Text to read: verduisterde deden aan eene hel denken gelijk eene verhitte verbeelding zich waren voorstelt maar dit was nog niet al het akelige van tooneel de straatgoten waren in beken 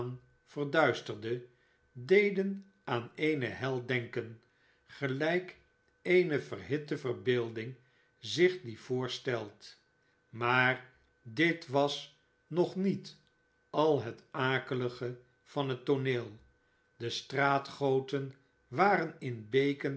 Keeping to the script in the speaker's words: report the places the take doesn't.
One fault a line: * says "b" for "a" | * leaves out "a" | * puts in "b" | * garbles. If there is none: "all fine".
* says "die" for "waren"
* puts in "het"